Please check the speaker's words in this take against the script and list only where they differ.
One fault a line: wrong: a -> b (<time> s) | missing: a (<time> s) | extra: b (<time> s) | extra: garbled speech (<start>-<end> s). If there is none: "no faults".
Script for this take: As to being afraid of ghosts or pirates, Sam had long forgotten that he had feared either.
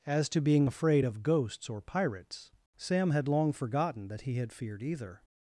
no faults